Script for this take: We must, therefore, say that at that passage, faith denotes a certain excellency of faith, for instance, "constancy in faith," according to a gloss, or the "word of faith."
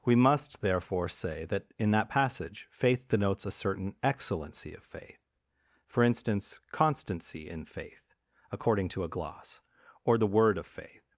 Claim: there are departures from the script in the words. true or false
true